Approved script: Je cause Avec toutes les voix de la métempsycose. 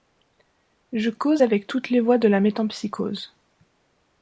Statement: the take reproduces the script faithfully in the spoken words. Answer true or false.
true